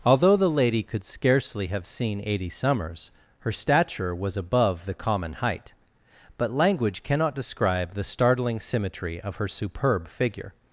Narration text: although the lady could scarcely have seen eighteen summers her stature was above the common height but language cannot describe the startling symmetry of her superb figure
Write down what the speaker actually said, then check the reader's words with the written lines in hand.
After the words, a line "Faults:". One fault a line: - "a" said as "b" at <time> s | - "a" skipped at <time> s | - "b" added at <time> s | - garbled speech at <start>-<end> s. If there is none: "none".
although the lady could scarcely have seen eighty summers her stature was above the common height but language cannot describe the startling symmetry of her superb figure
Faults:
- "eighteen" said as "eighty" at 2.2 s